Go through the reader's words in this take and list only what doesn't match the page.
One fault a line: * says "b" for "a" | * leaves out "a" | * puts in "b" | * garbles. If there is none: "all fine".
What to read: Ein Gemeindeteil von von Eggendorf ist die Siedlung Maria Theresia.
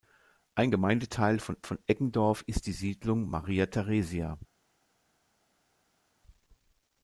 all fine